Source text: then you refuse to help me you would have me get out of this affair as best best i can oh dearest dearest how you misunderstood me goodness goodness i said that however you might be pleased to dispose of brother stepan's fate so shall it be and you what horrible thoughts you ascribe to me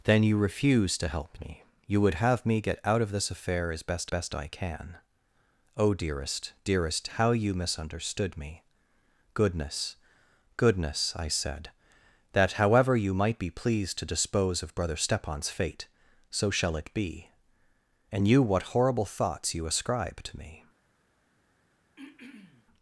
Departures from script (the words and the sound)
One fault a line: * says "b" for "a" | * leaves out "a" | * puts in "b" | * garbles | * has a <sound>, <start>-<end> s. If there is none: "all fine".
* has a throat clearing, 22.0-22.7 s